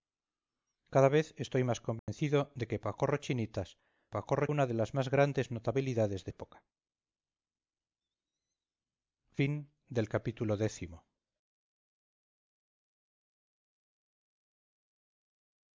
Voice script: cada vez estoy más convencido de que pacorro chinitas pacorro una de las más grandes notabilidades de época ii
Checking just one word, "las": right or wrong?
right